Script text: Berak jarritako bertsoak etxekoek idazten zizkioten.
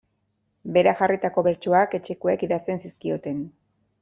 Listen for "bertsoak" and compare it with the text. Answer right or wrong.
right